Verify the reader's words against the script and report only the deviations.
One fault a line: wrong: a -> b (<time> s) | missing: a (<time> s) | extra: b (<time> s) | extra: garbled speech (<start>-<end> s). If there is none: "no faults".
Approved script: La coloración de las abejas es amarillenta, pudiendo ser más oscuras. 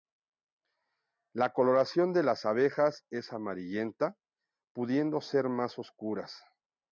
no faults